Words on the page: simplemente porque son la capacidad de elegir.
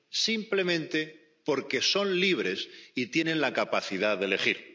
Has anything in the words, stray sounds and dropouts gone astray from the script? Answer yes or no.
yes